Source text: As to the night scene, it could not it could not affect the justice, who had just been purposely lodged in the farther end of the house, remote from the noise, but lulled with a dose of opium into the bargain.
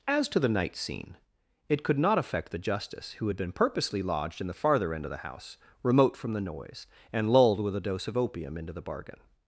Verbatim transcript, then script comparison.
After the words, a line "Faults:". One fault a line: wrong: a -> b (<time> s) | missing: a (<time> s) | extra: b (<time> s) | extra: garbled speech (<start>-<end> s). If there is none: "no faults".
As to the night scene, it could not affect the justice, who had been purposely lodged in the farther end of the house, remote from the noise, and lulled with a dose of opium into the bargain.
Faults:
missing: it could not (2.2 s)
missing: just (3.4 s)
wrong: but -> and (7.1 s)